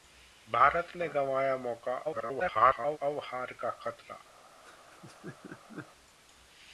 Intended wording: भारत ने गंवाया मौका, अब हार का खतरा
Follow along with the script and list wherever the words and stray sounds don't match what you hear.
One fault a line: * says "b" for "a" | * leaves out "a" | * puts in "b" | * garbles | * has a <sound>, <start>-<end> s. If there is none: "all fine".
* garbles
* has a laugh, 4.6-5.9 s